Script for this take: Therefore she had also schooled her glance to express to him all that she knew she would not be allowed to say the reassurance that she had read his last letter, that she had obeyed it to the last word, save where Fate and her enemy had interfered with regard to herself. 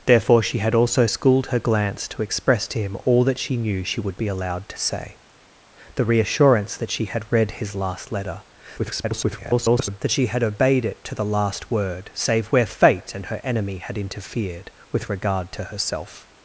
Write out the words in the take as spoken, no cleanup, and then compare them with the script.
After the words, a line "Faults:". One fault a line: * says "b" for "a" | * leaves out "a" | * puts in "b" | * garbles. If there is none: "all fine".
Therefore she had also schooled her glance to express to him all that she knew she would be allowed to say the reassurance that she had read his last letter, [garbled] that she had obeyed it to the last word, save where Fate and her enemy had interfered with regard to herself.
Faults:
* leaves out "not"
* garbles